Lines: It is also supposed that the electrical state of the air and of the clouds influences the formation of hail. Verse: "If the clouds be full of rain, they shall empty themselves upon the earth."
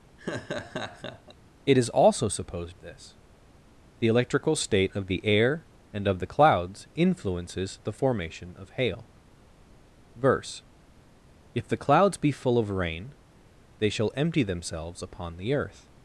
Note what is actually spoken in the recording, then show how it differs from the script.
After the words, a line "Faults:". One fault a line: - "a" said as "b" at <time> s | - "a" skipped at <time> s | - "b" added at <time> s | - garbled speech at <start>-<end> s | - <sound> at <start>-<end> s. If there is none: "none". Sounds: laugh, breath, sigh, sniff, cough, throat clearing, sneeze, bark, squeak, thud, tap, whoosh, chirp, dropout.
It is also supposed this the electrical state of the air and of the clouds influences the formation of hail. Verse: "If the clouds be full of rain, they shall empty themselves upon the earth."
Faults:
- laugh at 0.2-1.3 s
- "that" said as "this" at 2.8 s